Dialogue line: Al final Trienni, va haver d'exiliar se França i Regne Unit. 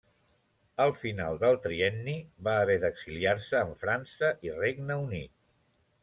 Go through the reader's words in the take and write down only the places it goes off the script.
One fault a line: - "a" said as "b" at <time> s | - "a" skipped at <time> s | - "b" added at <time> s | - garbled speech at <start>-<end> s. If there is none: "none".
- "del" added at 1.4 s
- "en" added at 3.7 s